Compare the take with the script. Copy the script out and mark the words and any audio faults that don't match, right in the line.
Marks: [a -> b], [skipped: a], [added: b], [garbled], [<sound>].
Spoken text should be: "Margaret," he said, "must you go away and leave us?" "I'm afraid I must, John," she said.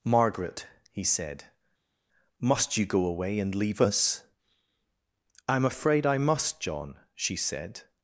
"Margaret," he said, "must you go away and leave us?" "I'm afraid I must, John," she said.